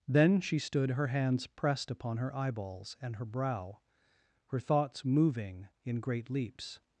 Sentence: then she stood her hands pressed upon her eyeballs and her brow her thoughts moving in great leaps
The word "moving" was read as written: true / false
true